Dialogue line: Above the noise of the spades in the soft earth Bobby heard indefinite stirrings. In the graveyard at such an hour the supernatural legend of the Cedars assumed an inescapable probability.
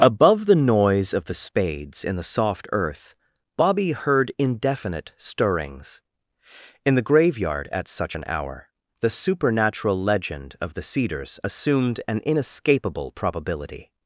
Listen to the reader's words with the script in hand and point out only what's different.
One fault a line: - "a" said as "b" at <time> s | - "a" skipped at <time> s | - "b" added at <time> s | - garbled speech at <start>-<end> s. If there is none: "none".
none